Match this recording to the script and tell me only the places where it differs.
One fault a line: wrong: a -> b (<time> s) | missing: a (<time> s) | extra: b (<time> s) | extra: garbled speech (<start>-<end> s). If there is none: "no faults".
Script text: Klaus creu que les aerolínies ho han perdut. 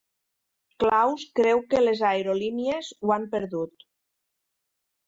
no faults